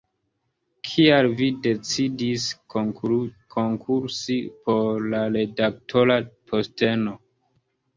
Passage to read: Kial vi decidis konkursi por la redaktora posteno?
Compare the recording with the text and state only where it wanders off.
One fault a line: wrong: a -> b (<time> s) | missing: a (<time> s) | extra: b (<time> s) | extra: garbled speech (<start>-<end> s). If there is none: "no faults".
no faults